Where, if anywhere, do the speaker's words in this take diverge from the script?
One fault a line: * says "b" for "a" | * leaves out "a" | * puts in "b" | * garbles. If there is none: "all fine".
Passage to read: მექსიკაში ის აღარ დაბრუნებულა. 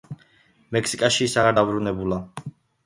all fine